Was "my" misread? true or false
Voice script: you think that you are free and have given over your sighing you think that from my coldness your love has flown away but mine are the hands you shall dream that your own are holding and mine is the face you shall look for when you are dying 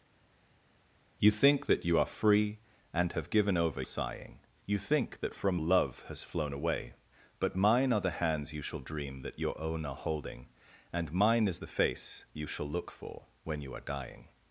true